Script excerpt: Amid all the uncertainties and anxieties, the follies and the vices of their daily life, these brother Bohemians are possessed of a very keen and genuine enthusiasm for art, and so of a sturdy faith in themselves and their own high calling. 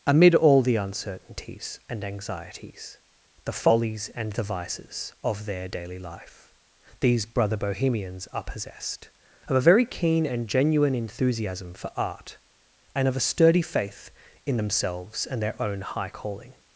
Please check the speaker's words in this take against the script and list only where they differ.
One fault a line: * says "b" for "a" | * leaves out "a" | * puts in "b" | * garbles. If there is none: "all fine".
* leaves out "so"